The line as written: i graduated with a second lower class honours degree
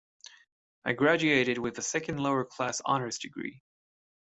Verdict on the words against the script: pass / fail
pass